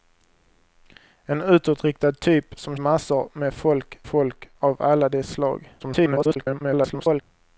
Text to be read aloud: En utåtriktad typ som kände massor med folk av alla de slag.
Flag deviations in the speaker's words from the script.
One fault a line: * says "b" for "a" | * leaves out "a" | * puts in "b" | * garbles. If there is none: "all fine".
* leaves out "kände"
* puts in "folk"
* garbles